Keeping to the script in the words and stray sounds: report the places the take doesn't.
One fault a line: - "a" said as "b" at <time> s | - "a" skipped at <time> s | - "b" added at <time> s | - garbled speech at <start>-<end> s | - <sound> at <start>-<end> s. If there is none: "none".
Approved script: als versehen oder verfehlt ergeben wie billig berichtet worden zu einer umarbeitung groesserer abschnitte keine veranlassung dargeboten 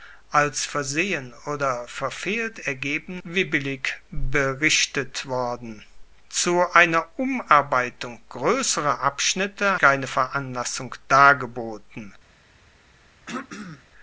- throat clearing at 13.3-13.9 s